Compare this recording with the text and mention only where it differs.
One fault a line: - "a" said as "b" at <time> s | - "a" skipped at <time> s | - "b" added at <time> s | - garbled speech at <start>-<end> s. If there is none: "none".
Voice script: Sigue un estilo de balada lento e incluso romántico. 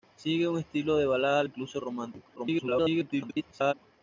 - "lento" skipped at 1.4 s
- garbled speech at 2.4-3.7 s